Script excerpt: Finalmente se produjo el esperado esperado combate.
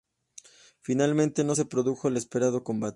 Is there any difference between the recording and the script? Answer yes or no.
yes